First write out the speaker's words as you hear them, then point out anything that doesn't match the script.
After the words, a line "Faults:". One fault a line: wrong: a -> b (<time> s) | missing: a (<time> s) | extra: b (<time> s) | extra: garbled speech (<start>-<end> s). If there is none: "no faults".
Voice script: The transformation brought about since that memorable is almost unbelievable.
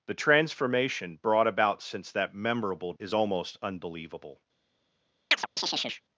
The transformation brought about since that memorable is almost unbelievable.
Faults:
no faults